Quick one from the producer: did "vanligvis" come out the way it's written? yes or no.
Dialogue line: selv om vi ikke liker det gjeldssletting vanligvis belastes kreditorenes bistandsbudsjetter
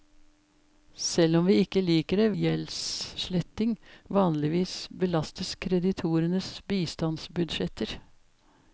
yes